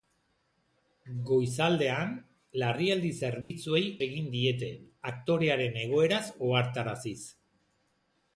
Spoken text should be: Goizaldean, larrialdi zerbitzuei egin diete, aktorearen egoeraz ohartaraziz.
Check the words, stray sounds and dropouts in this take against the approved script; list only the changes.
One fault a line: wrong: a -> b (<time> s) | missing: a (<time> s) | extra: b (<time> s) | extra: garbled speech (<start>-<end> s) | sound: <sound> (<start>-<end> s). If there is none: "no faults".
sound: dropout (3.4-3.5 s)